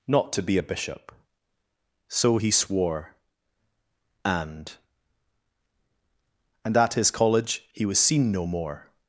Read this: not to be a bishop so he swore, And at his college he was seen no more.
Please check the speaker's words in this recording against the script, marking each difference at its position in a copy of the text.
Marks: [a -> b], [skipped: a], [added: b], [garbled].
not to be a bishop so he swore, And [added: And] at his college he was seen no more.